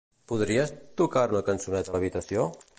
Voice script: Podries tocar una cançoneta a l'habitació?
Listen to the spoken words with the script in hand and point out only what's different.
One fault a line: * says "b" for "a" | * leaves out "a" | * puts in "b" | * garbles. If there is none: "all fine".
all fine